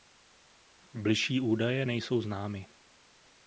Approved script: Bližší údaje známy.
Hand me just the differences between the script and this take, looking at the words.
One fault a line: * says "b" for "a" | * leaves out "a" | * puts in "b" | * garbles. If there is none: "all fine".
* puts in "nejsou"